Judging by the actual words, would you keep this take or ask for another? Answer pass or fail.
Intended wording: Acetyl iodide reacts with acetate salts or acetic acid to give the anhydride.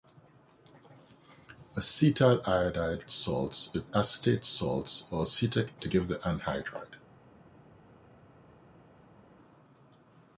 fail